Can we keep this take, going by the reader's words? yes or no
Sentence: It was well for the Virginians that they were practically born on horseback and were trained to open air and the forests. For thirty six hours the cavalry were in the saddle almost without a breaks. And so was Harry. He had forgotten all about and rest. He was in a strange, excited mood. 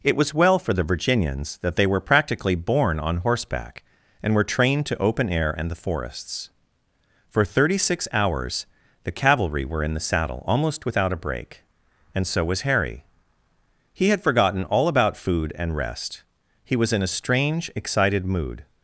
no